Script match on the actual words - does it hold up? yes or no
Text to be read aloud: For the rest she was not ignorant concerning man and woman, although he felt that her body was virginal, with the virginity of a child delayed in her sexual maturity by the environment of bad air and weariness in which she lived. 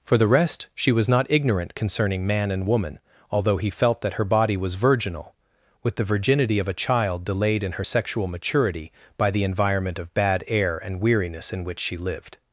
yes